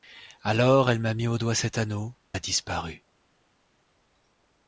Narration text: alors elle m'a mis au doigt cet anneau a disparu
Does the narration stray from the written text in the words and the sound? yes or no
no